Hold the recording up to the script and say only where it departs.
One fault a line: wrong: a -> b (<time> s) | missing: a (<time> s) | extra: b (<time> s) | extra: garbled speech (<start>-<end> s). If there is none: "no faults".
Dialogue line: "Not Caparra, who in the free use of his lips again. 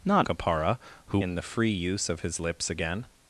no faults